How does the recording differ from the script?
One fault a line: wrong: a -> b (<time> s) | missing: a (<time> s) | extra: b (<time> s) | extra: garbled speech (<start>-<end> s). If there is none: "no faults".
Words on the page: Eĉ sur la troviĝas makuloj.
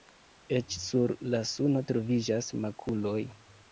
extra: suno (1.5 s)